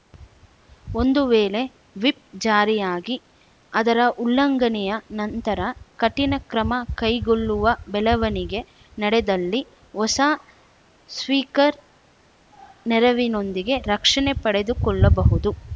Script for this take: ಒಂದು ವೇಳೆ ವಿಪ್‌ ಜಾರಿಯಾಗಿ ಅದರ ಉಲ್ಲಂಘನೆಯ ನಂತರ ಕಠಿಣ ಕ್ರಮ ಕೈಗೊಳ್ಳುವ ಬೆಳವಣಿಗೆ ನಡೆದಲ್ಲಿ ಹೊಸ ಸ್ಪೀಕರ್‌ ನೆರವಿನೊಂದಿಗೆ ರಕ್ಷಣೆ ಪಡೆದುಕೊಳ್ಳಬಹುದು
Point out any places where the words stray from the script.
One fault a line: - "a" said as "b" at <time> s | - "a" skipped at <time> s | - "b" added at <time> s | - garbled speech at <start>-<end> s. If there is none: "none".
none